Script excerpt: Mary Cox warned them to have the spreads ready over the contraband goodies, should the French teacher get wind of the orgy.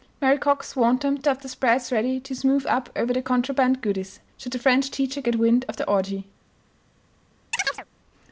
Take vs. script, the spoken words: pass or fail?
fail